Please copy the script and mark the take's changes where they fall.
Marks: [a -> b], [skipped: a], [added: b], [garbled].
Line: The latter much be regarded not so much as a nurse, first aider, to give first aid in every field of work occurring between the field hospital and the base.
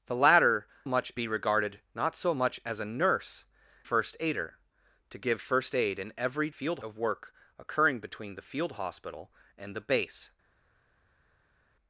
The latter much be regarded not so much as a nurse, first aider, to give first aid in every field of work occurring between the field hospital and the base.